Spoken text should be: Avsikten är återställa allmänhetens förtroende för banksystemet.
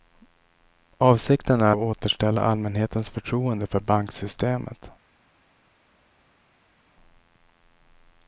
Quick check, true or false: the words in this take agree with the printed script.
true